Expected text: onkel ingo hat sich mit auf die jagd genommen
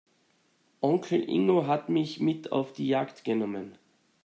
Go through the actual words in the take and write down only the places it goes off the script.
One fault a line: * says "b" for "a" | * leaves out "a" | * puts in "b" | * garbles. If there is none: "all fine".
* says "mich" for "sich"